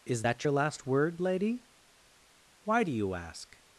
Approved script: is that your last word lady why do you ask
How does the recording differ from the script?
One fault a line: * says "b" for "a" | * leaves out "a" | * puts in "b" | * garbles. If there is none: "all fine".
all fine